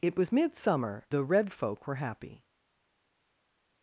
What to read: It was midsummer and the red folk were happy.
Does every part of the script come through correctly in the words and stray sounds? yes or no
no